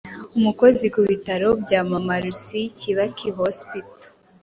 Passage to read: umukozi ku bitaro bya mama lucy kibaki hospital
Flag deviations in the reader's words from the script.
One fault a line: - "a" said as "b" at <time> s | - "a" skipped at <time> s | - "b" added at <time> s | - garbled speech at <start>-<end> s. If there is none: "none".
none